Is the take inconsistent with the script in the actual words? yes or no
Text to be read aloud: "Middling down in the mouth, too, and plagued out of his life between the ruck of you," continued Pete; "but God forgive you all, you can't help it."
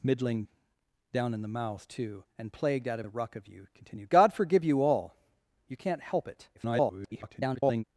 yes